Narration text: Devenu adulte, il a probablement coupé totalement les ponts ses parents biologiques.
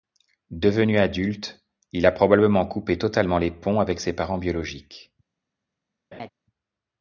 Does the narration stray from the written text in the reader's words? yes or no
yes